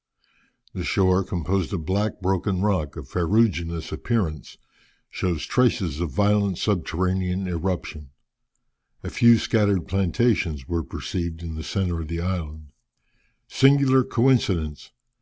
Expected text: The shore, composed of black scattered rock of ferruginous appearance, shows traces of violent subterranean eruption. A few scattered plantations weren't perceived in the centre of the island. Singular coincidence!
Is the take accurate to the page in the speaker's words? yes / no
no